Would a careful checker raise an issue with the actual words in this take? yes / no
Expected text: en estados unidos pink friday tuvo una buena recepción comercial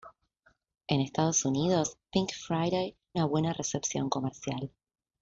yes